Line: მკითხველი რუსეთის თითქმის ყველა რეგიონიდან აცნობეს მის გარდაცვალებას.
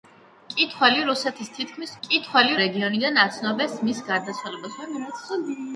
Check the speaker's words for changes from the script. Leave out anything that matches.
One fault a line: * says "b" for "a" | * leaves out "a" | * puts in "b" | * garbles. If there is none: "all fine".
* says "მკითხველი" for "ყველა"